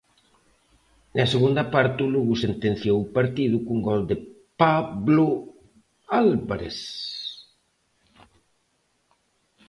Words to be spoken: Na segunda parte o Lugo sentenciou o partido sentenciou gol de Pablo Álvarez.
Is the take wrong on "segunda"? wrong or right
right